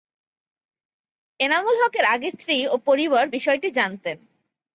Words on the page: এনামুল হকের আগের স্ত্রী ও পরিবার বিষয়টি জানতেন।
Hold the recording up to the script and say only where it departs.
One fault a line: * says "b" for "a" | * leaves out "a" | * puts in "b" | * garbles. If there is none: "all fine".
all fine